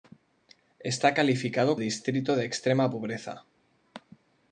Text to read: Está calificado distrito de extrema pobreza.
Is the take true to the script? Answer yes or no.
yes